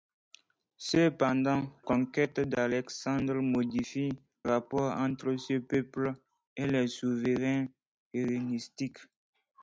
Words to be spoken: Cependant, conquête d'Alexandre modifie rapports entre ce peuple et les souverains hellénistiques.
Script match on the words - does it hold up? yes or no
yes